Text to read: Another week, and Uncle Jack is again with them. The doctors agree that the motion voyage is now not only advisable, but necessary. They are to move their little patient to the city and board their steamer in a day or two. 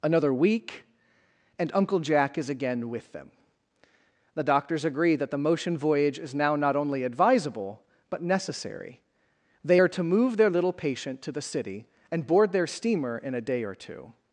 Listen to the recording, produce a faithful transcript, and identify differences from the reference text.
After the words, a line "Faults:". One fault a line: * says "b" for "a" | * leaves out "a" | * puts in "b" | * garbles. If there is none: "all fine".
Another week, and Uncle Jack is again with them. The doctors agree that the motion voyage is now not only advisable, but necessary. They are to move their little patient to the city and board their steamer in a day or two.
Faults:
all fine